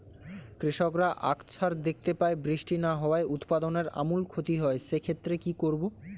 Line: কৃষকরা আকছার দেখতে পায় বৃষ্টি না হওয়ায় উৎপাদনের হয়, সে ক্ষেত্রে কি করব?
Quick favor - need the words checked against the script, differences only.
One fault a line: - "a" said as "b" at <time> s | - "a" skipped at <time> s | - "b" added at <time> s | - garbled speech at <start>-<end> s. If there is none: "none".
- "আমূল ক্ষতি" added at 4.0 s